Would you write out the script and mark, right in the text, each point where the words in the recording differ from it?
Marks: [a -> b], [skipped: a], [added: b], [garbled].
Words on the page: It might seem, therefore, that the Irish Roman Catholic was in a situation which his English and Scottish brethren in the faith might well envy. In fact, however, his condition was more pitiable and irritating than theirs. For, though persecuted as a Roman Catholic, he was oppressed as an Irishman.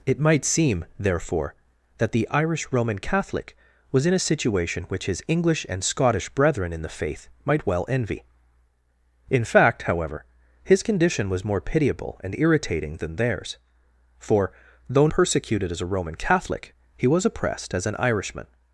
It might seem, therefore, that the Irish Roman Catholic was in a situation which his English and Scottish brethren in the faith might well envy. In fact, however, his condition was more pitiable and irritating than theirs. For, though persecuted as a Roman Catholic, he was oppressed as an Irishman.